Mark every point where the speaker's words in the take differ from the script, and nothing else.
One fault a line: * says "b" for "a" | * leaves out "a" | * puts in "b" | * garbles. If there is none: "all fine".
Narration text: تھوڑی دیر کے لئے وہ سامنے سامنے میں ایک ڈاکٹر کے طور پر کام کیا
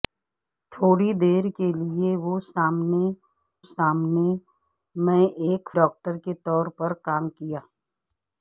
all fine